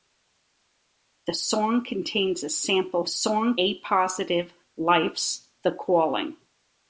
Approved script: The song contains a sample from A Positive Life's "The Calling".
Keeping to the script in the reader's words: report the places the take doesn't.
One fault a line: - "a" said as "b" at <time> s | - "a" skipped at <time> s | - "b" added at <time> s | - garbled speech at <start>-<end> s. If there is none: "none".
- "from" said as "song" at 3.1 s